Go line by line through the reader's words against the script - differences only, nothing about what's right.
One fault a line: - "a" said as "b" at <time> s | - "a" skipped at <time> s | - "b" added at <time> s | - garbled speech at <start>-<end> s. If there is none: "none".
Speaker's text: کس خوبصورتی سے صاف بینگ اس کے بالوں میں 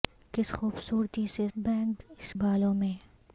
- "صاف" skipped at 1.5 s
- "کے" skipped at 2.3 s